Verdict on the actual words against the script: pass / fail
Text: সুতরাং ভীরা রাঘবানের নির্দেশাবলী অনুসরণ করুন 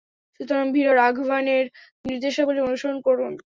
pass